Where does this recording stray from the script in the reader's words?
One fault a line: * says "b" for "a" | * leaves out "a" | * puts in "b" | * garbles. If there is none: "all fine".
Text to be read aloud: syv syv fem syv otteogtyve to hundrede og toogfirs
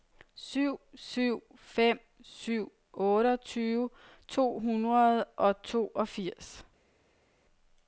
all fine